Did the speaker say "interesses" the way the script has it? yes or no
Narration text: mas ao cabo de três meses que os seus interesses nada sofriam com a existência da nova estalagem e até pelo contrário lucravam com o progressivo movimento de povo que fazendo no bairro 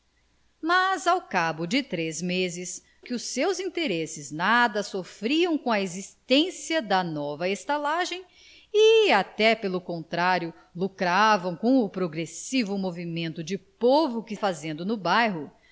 yes